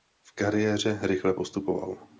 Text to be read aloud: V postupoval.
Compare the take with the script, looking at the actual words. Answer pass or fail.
fail